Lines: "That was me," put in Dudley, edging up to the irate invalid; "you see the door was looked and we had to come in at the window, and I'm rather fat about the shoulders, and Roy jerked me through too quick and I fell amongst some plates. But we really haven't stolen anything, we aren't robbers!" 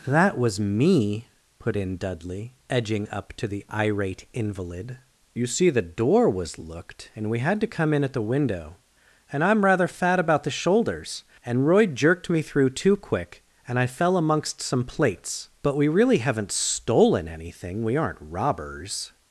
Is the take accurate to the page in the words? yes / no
yes